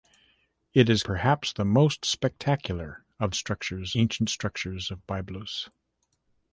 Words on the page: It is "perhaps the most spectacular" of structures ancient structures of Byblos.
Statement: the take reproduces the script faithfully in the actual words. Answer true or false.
true